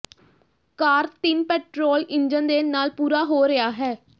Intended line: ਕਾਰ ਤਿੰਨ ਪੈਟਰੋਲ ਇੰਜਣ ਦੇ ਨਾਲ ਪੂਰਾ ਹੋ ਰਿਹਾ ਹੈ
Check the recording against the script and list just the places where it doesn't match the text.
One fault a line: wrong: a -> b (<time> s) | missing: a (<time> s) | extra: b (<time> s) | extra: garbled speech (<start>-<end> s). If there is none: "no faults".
no faults